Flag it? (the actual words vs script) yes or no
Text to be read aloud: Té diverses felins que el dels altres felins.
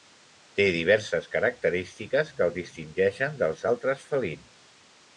yes